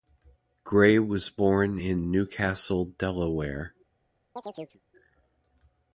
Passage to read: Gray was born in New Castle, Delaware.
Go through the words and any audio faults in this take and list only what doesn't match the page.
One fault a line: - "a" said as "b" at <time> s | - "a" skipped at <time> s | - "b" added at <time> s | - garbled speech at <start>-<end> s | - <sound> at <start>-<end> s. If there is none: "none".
- chirp at 4.4-4.8 s